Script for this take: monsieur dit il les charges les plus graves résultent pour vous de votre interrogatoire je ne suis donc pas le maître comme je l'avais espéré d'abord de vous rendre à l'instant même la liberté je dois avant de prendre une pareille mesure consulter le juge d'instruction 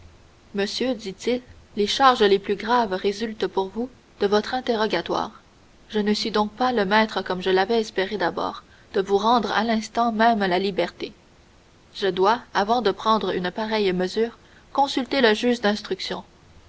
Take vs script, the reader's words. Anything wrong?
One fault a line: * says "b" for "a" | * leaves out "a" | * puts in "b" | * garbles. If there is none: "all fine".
all fine